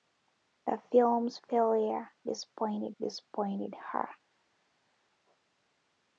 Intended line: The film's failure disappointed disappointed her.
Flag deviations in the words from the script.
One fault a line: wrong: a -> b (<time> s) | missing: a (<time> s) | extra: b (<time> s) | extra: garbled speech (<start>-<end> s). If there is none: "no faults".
no faults